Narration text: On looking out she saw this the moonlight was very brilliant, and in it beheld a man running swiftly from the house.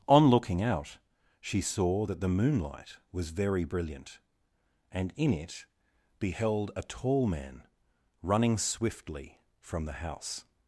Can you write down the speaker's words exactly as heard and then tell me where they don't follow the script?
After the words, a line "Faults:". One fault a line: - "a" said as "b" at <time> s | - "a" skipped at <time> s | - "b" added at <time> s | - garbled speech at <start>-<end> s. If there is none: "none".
On looking out she saw that the moonlight was very brilliant, and in it beheld a tall man running swiftly from the house.
Faults:
- "this" said as "that" at 2.0 s
- "tall" added at 6.8 s